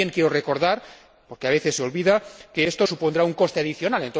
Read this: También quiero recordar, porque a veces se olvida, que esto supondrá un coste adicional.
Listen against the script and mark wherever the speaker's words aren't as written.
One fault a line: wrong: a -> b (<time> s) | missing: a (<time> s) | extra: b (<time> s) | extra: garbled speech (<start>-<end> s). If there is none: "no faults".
no faults